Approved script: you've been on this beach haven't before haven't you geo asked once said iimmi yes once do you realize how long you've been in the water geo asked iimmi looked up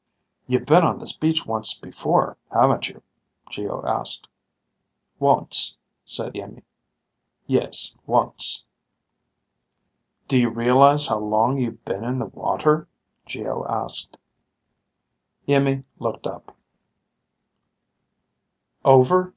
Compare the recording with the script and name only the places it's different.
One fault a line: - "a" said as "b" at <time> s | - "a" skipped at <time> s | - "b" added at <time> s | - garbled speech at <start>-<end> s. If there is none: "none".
- "haven't" said as "once" at 1.4 s